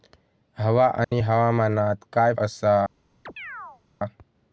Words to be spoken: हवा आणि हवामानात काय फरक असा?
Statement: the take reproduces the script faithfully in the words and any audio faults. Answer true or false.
false